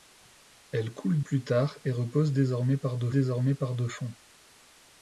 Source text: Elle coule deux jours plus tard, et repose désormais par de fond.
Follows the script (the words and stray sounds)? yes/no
no